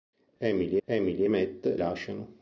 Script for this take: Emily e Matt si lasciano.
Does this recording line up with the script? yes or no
no